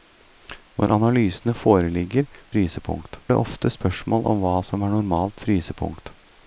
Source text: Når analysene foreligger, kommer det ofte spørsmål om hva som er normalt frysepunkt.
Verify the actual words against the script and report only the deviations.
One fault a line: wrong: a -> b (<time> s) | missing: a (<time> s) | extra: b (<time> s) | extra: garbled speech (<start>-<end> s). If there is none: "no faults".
wrong: kommer -> frysepunkt (2.5 s)